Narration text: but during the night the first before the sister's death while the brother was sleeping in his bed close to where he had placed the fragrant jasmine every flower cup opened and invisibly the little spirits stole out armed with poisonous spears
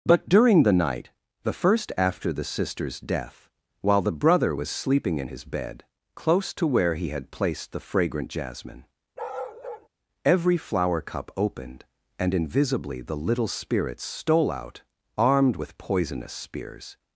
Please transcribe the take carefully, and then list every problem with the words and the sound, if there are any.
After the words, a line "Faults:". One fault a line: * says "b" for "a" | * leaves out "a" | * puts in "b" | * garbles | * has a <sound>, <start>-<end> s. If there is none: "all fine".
but during the night the first after the sister's death while the brother was sleeping in his bed close to where he had placed the fragrant jasmine every flower cup opened and invisibly the little spirits stole out armed with poisonous spears
Faults:
* says "after" for "before"
* has a bark, 9.2-9.9 s